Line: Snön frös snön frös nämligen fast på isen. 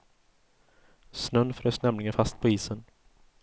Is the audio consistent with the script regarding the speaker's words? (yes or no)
no